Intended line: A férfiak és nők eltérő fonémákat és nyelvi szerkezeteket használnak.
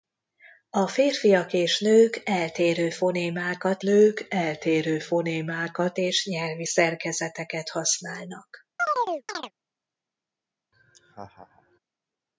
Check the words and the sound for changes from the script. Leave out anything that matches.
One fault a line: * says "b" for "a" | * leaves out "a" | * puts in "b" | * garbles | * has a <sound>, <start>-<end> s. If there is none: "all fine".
* puts in "nők eltérő fonémákat"
* has a chirp, 8.8-9.5 s
* has a laugh, 10.7-11.8 s